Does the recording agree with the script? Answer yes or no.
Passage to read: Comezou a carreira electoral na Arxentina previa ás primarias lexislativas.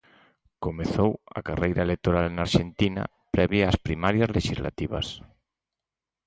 yes